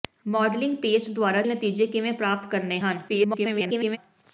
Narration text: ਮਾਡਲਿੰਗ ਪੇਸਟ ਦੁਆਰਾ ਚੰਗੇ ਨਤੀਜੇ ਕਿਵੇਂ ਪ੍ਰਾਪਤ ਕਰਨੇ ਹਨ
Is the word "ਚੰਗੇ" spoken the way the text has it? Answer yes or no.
no